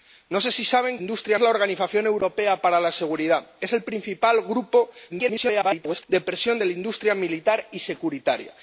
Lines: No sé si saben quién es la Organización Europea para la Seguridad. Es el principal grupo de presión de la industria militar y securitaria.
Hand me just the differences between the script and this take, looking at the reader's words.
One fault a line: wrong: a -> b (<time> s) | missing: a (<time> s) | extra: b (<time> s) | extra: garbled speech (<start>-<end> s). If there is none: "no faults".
wrong: quién -> industria (1.0 s)
extra: garbled speech (5.1-6.0 s)